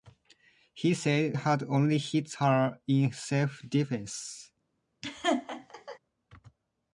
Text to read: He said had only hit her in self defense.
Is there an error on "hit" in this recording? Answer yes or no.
no